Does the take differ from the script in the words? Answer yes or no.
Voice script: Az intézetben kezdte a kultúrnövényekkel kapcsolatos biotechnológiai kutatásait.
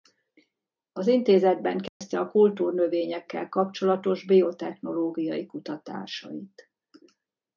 no